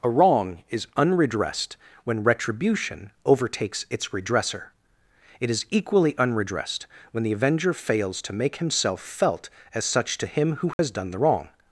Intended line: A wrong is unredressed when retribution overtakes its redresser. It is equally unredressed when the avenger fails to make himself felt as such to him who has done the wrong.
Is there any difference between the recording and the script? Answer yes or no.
no